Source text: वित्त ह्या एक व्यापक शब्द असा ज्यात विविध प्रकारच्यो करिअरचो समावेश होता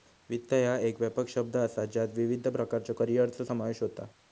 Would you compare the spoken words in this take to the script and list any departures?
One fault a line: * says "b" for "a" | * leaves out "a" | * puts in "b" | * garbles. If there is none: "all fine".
all fine